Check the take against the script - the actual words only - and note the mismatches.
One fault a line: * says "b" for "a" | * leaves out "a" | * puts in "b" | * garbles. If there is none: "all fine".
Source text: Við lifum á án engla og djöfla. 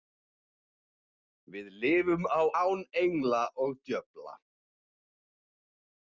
all fine